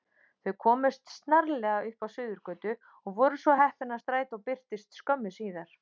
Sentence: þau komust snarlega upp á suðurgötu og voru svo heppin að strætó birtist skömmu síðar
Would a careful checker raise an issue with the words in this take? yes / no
no